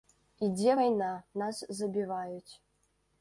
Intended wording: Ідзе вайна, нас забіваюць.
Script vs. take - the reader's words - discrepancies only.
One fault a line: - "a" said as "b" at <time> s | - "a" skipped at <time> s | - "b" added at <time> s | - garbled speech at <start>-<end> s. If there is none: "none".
none